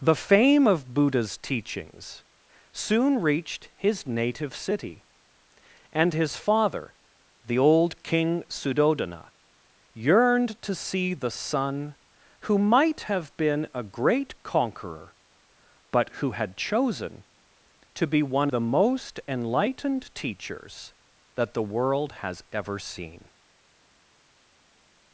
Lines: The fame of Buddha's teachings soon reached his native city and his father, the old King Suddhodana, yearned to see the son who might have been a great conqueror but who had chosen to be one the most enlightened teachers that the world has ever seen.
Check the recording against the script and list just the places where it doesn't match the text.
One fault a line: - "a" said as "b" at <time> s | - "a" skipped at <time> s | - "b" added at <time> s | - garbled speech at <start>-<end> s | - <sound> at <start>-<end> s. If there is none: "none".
none